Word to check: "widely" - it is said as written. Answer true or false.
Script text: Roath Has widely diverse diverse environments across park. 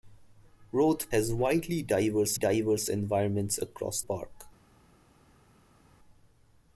true